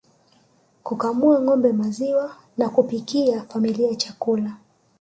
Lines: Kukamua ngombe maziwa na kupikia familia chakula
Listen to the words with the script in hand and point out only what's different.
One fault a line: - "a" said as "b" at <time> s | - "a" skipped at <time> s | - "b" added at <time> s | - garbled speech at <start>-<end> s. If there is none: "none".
none